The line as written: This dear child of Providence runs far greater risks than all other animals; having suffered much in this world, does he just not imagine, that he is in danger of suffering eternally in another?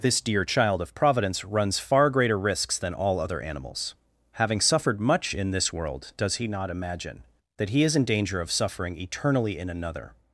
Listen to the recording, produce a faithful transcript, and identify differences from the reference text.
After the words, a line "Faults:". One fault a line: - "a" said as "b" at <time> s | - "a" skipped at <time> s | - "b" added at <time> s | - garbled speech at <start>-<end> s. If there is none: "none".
This dear child of Providence runs far greater risks than all other animals; having suffered much in this world, does he not imagine, that he is in danger of suffering eternally in another?
Faults:
- "just" skipped at 6.5 s